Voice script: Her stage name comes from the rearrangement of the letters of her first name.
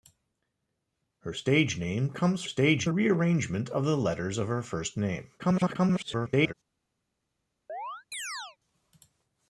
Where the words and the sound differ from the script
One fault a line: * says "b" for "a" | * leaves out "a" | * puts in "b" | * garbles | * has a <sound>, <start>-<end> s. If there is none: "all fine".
* says "stage" for "from"
* garbles
* has a chirp, 7.7-8.6 s